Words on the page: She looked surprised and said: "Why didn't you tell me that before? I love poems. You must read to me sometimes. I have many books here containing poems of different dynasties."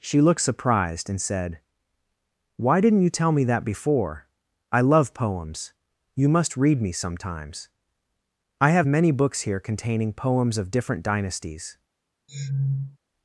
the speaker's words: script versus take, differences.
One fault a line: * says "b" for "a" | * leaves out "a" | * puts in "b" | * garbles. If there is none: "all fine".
* leaves out "to"